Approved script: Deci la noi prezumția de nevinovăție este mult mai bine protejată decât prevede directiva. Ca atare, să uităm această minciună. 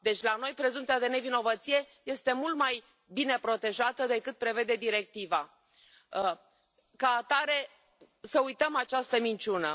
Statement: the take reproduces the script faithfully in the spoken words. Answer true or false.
true